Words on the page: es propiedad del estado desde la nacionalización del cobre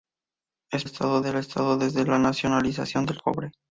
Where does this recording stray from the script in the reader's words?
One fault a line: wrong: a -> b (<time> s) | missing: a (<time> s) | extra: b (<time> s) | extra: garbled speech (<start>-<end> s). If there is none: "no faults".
wrong: propiedad -> estado (0.8 s)